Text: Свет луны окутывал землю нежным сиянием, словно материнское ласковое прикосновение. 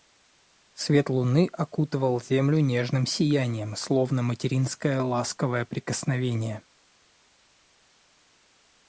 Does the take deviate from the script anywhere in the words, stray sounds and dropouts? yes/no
no